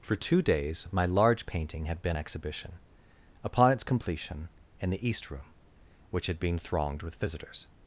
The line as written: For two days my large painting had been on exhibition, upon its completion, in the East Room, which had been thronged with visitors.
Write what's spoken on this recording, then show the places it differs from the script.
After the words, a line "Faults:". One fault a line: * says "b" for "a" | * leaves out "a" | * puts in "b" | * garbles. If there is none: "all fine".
For two days my large painting had been exhibition, upon its completion, in the East Room, which had been thronged with visitors.
Faults:
* leaves out "on"